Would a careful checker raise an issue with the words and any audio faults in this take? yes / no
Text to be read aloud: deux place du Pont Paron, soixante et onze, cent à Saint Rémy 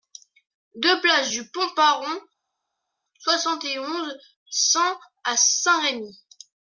no